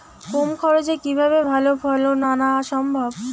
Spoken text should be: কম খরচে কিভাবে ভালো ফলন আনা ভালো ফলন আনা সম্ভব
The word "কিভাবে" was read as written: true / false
true